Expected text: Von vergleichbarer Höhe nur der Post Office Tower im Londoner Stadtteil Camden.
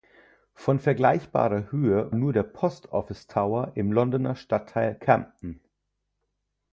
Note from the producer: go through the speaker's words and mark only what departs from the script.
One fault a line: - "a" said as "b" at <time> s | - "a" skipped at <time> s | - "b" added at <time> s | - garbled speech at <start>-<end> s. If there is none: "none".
none